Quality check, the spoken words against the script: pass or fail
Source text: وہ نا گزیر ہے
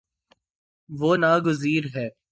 pass